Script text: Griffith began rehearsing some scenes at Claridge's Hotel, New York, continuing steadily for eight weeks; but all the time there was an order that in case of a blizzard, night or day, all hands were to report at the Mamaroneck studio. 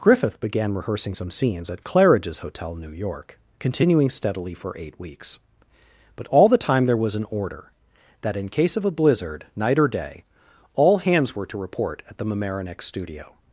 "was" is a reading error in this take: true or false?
false